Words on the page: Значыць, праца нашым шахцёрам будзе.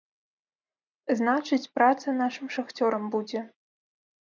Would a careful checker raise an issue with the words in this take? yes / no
no